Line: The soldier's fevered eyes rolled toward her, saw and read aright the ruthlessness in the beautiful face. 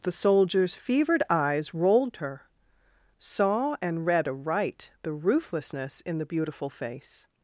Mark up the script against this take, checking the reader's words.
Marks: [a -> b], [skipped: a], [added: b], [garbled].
The soldier's fevered eyes rolled [skipped: toward] her, saw and read aright the ruthlessness in the beautiful face.